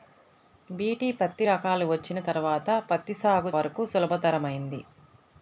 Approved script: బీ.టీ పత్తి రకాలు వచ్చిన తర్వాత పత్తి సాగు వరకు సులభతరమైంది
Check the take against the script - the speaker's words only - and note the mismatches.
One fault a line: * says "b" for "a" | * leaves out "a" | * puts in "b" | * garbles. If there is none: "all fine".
all fine